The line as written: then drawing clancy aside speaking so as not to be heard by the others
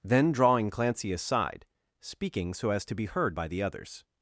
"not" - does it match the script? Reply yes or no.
no